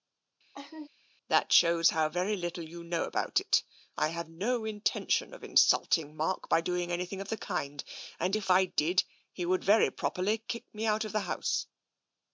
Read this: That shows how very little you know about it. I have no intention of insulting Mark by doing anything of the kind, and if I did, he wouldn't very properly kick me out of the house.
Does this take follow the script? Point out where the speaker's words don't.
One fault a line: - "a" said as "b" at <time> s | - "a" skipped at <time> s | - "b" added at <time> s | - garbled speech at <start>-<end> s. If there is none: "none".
- "wouldn't" said as "would" at 9.4 s